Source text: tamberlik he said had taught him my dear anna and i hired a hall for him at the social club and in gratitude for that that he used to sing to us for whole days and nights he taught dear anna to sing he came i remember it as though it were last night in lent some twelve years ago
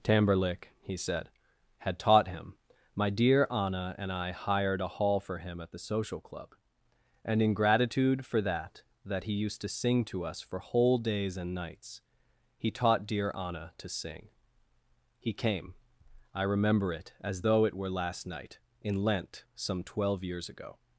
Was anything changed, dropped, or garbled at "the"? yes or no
no